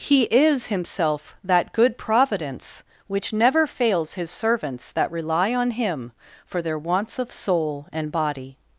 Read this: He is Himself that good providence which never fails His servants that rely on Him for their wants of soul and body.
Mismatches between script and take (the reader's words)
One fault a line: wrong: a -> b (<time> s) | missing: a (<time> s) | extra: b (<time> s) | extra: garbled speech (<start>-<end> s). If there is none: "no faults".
no faults